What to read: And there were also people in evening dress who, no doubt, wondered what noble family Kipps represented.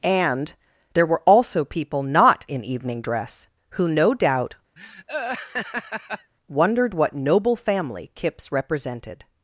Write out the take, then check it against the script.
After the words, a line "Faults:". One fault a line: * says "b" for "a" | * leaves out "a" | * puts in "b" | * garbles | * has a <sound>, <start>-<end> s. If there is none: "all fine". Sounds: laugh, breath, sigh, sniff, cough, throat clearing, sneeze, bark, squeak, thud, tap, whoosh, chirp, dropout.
And there were also people not in evening dress who, no doubt, wondered what noble family Kipps represented.
Faults:
* puts in "not"
* has a laugh, 4.8-6.3 s